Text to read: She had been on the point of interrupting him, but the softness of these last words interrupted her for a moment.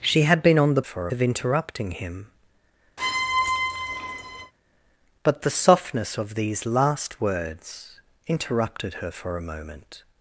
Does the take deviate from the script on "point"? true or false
true